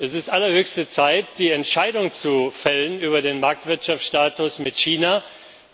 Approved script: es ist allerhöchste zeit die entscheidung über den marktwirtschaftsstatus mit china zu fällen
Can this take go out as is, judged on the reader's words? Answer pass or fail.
pass